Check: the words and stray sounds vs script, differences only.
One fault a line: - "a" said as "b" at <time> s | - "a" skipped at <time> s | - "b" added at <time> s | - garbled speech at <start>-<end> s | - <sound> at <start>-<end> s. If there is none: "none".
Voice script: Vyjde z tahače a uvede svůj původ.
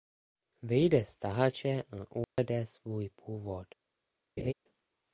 - dropout at 2.2-2.4 s
- laugh at 4.4-4.5 s